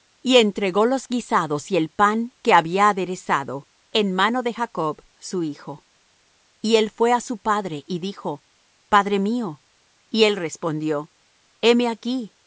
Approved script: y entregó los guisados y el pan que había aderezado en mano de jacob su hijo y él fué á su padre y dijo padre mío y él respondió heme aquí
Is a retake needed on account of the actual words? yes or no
no